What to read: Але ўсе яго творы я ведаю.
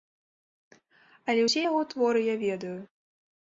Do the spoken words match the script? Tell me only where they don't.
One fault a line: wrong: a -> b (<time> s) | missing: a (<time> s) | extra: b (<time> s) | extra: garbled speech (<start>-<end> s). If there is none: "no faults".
no faults